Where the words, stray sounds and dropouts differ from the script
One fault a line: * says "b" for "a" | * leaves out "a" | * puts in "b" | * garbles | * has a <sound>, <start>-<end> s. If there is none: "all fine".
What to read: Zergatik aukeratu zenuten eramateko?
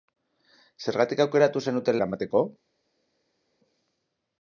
all fine